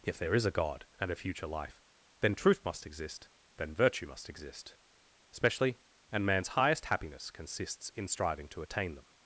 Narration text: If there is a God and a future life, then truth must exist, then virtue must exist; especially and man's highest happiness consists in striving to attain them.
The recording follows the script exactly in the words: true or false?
true